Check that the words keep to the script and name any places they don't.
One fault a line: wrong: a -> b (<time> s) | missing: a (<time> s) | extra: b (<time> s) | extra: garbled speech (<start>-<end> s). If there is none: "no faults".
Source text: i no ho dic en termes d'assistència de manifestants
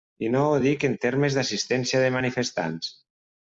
no faults